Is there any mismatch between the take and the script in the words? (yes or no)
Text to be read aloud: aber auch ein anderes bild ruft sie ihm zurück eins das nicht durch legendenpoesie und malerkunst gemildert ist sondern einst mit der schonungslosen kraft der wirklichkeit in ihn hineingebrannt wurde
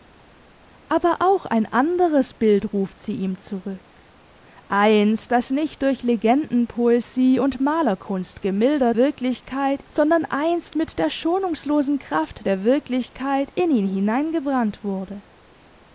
yes